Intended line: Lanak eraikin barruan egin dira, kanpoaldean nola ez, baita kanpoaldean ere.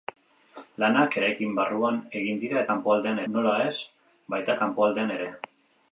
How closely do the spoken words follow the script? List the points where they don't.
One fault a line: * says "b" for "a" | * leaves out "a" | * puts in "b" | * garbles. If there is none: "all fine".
all fine